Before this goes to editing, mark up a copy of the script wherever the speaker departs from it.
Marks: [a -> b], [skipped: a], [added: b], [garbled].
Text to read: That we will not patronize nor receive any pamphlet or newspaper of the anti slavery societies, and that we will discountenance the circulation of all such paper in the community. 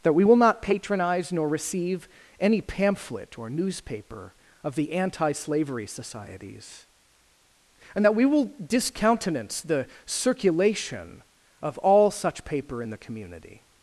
That we will not patronize nor receive any pamphlet or newspaper of the anti slavery societies, and that we will discountenance the circulation of all such paper in the community.